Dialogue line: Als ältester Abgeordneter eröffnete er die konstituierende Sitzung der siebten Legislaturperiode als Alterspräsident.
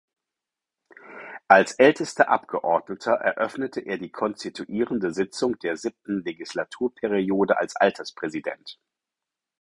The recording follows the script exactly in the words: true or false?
true